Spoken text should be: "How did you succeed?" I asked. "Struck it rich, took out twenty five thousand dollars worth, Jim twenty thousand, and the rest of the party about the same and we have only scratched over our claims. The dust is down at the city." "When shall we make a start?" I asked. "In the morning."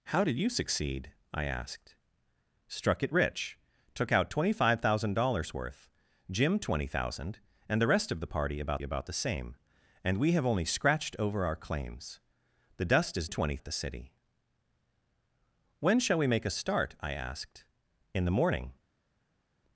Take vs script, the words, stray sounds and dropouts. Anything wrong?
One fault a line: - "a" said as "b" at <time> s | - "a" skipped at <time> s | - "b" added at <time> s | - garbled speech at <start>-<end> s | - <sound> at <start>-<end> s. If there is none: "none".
- "about" added at 8.8 s
- "down" said as "twenty" at 13.3 s